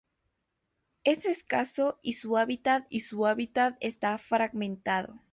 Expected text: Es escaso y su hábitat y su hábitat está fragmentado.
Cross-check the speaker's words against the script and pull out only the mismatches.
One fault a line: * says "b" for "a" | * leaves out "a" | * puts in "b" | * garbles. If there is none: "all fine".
all fine